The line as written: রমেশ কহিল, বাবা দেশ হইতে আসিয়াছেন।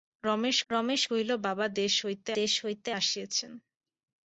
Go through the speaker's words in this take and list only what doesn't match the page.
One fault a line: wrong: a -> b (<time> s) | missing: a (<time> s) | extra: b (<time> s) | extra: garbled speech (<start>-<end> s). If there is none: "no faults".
extra: রমেশ (0.7 s)
extra: দেশ হইতে (2.4 s)